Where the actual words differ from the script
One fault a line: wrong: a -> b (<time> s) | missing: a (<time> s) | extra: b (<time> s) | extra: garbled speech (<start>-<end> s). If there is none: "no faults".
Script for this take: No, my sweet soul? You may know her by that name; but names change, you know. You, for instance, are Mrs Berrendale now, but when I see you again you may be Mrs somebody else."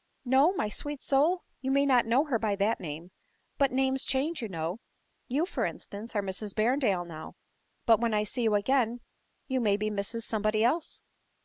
extra: not (1.9 s)